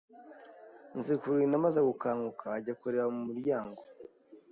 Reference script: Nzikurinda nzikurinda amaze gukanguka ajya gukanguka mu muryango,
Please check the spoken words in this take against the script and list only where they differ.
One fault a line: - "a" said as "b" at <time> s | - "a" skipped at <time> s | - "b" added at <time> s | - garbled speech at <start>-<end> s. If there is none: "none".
- "nzikurinda" skipped at 1.6 s
- "gukanguka" said as "kureba" at 2.8 s